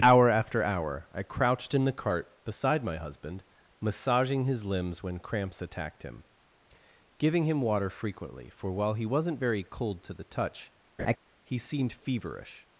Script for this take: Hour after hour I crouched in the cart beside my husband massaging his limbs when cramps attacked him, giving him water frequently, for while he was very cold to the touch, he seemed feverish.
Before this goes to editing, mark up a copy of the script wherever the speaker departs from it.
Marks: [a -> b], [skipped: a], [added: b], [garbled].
Hour after hour I crouched in the cart beside my husband massaging his limbs when cramps attacked him, giving him water frequently, for while he [was -> wasn't] very cold to the touch, he seemed feverish.